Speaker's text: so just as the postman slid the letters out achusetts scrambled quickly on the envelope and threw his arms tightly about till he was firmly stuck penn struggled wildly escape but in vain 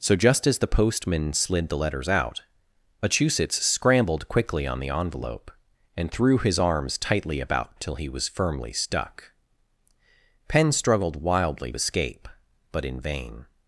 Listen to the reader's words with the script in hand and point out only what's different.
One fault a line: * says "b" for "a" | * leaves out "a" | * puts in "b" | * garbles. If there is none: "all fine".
all fine